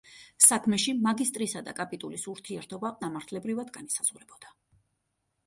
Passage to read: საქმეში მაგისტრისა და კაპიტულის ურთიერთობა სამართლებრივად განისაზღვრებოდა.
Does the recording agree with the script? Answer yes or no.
yes